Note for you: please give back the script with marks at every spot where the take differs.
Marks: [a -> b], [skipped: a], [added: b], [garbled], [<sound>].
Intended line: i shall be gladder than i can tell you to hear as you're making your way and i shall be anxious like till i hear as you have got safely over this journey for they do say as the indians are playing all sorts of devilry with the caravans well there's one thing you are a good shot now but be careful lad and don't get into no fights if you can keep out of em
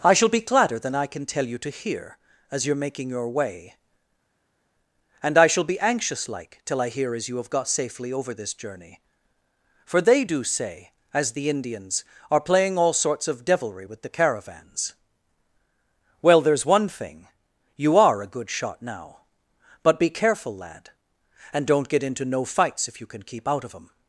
i shall be gladder than i can tell you to hear as you're making your way and i shall be anxious like till i hear as you have got safely over this journey for they do say as the indians are playing all sorts of devilry with the caravans well there's one thing you are a good shot now but be careful lad and don't get into no fights if you can keep out of em